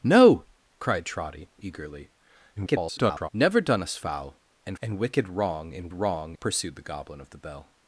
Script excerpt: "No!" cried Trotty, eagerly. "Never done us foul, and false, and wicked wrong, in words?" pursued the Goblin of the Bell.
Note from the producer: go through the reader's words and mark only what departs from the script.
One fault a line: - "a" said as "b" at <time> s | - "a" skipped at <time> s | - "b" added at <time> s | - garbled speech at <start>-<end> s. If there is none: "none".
- garbled speech at 2.6-3.3 s
- "false" skipped at 4.8 s
- "words" said as "wrong" at 5.9 s